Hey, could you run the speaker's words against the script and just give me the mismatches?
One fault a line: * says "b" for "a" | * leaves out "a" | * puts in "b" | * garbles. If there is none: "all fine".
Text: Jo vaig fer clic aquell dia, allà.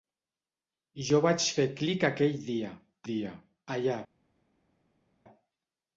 * puts in "dia"